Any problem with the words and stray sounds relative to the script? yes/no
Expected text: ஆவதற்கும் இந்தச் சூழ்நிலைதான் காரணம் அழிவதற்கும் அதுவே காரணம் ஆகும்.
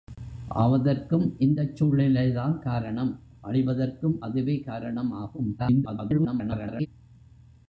yes